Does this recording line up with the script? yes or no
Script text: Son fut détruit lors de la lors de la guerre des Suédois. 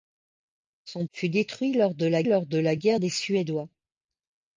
yes